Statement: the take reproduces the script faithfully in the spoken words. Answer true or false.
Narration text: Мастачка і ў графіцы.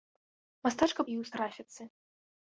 true